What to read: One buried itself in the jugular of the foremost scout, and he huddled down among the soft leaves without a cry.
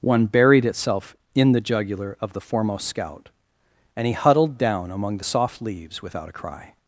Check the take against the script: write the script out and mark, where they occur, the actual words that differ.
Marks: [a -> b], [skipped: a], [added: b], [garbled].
One buried itself in the jugular of the foremost scout, and he huddled down among the soft leaves without a cry.